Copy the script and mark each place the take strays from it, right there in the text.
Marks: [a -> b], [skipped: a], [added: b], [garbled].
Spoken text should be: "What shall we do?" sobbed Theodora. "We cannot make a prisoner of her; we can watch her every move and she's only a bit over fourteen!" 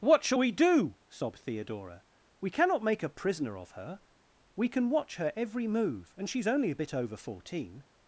"What shall we do?" sobbed Theodora. "We cannot make a prisoner of her; we can watch her every move and she's only a bit over fourteen!"